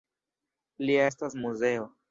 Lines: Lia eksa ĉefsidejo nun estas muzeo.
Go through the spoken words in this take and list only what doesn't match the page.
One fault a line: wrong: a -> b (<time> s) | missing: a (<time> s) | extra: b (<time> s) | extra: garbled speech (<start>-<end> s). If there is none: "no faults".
missing: eksa ĉefsidejo nun (1.0 s)